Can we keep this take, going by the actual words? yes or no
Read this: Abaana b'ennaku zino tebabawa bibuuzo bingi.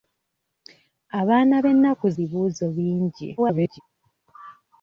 no